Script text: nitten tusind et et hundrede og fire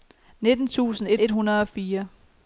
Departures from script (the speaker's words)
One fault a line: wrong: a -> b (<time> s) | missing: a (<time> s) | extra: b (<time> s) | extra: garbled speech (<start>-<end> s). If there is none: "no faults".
no faults